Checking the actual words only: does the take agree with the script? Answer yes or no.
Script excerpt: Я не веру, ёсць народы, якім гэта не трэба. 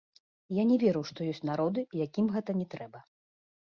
no